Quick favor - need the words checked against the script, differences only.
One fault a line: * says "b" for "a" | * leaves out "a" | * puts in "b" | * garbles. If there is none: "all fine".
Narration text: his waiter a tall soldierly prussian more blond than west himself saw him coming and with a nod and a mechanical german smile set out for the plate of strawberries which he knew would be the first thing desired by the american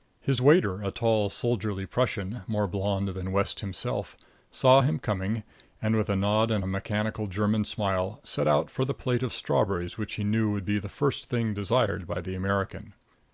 all fine